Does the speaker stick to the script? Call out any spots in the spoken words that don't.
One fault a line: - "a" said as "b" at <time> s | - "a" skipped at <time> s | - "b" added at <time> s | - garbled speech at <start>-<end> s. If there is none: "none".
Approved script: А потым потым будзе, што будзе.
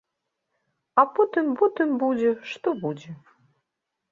none